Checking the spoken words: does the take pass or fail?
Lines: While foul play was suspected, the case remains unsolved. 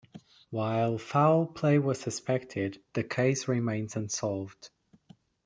pass